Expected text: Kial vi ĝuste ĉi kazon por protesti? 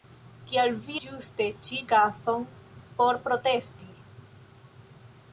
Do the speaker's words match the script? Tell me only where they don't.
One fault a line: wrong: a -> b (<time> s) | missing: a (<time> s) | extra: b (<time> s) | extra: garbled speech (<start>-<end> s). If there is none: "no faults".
no faults